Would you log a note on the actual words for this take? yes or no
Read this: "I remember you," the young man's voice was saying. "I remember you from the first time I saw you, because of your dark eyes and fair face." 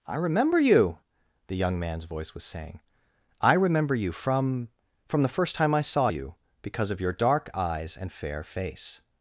yes